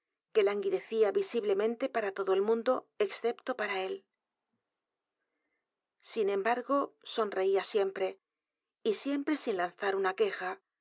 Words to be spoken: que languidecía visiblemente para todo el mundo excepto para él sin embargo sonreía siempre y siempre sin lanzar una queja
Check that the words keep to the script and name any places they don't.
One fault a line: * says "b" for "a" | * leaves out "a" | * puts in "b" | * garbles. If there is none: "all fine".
all fine